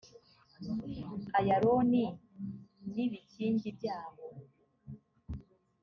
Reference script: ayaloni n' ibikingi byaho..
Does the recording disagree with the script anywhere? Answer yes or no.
no